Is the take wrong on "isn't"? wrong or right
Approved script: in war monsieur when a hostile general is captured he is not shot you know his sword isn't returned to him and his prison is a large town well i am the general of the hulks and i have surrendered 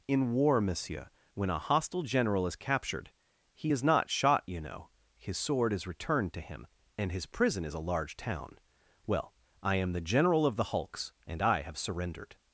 wrong